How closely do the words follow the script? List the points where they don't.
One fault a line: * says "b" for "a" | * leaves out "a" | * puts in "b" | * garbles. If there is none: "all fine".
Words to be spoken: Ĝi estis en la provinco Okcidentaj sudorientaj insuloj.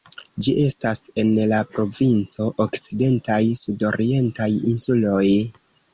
* says "estas" for "estis"